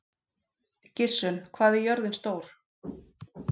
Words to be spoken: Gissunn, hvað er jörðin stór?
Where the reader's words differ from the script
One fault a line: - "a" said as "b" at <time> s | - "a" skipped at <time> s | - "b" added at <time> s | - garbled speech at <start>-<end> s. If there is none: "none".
none